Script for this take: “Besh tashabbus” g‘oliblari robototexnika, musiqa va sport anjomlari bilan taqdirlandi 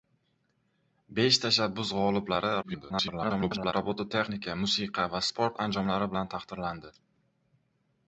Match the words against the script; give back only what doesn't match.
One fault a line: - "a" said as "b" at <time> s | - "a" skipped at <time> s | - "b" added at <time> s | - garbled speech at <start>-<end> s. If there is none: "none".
- garbled speech at 2.6-3.7 s